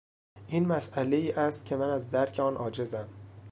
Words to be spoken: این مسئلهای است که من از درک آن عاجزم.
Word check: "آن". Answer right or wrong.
right